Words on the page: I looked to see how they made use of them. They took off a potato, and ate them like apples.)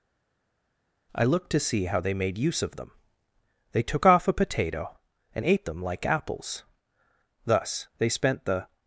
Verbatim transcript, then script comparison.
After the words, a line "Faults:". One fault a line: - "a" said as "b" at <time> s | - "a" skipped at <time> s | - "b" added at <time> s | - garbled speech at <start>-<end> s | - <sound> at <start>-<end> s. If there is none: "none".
I looked to see how they made use of them. They took off a potato, and ate them like apples.) Thus they spent the
Faults:
- "Thus they spent the" added at 7.5 s